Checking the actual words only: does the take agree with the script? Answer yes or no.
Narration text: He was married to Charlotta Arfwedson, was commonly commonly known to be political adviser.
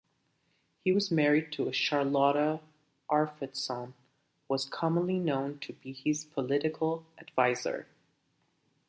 no